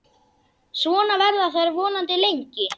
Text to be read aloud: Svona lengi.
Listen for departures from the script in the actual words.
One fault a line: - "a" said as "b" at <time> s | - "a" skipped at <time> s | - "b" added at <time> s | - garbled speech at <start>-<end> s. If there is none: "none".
- "verða þær vonandi" added at 1.2 s